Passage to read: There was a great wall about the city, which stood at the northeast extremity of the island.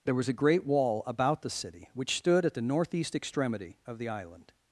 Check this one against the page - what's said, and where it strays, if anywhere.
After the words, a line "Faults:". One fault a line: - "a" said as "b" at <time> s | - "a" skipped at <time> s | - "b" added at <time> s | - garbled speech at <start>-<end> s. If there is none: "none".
There was a great wall about the city, which stood at the northeast extremity of the island.
Faults:
none